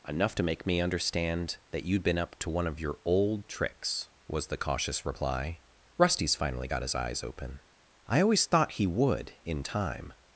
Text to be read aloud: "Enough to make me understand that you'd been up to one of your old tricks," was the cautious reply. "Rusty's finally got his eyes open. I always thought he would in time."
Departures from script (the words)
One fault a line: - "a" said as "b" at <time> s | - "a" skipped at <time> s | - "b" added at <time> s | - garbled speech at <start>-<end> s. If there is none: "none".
none